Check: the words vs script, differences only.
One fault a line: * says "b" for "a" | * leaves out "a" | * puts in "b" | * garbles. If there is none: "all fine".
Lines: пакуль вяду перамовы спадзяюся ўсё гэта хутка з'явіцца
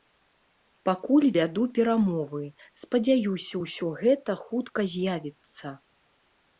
all fine